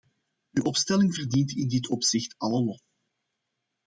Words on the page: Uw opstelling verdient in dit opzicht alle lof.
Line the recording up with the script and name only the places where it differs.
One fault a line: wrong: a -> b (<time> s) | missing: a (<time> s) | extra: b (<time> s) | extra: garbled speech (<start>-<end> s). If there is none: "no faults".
no faults